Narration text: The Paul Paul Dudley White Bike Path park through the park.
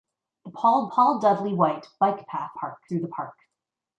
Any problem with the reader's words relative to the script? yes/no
no